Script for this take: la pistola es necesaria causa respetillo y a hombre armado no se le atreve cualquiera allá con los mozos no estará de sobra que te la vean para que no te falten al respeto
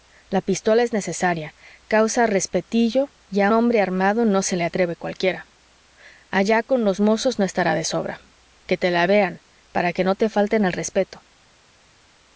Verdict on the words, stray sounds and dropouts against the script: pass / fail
pass